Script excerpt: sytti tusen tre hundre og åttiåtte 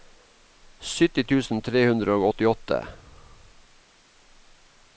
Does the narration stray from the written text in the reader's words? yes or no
no